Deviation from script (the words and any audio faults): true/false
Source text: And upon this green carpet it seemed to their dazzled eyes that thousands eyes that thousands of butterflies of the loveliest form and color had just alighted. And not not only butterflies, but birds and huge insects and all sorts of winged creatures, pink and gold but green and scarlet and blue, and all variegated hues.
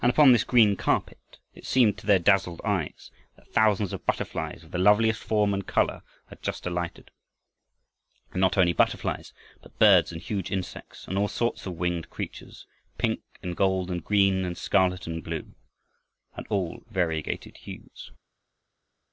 true